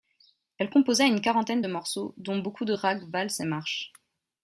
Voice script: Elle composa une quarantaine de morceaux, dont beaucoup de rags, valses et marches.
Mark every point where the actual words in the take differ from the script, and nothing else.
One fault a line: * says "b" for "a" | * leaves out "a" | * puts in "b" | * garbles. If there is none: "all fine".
all fine